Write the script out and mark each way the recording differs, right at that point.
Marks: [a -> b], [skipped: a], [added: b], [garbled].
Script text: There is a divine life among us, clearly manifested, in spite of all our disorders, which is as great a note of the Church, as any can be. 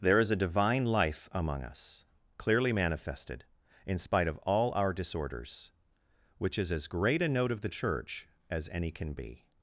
There is a divine life among us, clearly manifested, in spite of all our disorders, which is as great a note of the Church, as any can be.